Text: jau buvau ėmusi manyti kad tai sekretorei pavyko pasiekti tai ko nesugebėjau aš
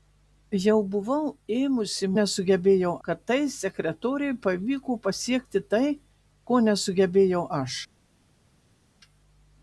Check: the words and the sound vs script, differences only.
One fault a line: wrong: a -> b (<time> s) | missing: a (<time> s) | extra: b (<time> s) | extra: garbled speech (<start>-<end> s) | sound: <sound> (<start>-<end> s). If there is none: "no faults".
wrong: manyti -> nesugebėjau (2.2 s)